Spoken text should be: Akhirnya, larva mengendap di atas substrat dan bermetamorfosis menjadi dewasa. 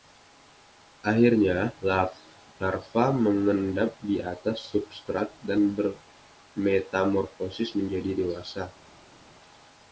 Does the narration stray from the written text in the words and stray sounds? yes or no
no